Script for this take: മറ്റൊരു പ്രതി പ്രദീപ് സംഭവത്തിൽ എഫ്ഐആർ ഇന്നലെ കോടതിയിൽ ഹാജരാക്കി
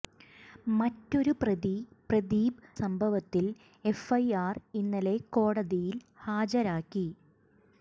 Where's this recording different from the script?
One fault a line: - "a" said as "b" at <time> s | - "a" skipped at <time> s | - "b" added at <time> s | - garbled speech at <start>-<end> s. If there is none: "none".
none